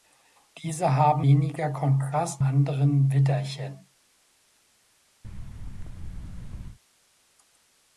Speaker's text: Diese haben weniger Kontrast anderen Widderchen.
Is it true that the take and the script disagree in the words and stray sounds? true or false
true